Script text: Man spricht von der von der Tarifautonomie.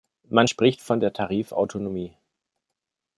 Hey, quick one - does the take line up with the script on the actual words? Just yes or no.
no